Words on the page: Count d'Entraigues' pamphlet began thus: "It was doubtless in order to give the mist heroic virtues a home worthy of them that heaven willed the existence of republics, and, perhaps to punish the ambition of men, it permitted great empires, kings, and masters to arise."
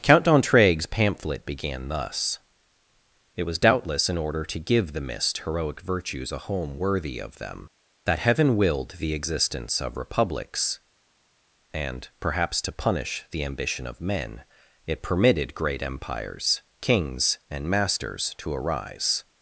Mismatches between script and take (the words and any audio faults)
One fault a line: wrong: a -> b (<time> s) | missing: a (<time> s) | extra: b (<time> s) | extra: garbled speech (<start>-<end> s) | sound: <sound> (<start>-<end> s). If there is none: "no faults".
no faults